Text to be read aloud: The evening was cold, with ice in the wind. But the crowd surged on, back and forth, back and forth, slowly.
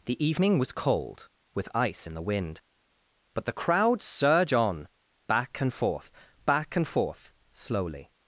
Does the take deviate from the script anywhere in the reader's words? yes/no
yes